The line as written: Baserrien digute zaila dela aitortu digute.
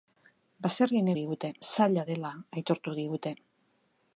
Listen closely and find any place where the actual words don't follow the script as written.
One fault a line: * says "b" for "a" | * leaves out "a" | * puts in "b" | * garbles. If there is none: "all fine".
all fine